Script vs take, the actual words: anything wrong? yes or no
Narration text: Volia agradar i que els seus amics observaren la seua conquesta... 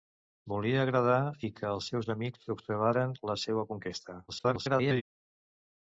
yes